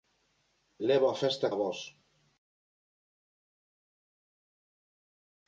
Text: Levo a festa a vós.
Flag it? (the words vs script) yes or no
no